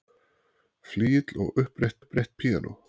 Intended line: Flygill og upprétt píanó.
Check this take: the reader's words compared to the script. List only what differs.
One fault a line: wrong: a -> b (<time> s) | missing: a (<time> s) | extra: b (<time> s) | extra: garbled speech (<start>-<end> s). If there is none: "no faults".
extra: upprétt (2.0 s)